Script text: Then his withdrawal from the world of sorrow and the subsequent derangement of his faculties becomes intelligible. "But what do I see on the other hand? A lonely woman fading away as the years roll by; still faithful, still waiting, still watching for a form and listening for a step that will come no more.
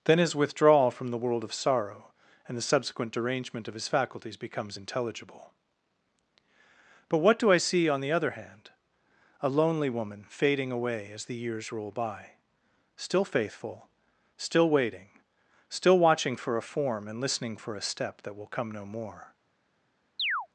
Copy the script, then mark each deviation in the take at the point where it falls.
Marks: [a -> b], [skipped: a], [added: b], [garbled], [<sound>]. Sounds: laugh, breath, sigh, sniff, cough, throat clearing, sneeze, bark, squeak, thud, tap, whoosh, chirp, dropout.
Then his withdrawal from the world of sorrow and the subsequent derangement of his faculties becomes intelligible. "But what do I see on the other hand? A lonely woman fading away as the years roll by; still faithful, still waiting, still watching for a form and listening for a step that will come no more. [chirp]